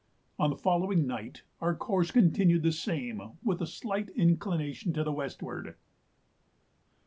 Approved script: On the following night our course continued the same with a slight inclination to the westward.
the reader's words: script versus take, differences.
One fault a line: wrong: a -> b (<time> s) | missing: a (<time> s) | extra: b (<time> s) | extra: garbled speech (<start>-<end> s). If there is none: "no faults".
no faults